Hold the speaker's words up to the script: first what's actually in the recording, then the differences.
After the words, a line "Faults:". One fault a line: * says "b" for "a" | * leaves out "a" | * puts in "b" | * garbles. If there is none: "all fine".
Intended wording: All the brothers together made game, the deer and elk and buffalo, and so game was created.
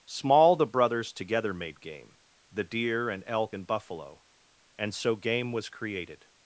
Small the brothers together made game, the deer and elk and buffalo, and so game was created.
Faults:
* says "Small" for "All"